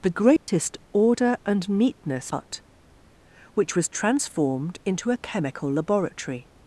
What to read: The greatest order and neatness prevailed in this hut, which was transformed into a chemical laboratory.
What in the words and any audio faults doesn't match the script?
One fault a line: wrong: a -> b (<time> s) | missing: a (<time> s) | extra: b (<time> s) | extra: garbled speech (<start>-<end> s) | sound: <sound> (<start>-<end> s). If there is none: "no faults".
sound: dropout (0.4-0.5 s)
missing: prevailed in this (2.3 s)